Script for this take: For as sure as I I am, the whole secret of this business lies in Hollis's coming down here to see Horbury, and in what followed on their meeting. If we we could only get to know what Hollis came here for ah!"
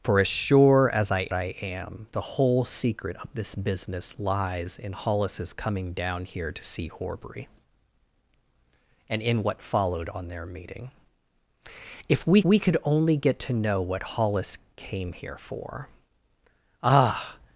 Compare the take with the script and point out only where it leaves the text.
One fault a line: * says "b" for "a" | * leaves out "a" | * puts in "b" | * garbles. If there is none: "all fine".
all fine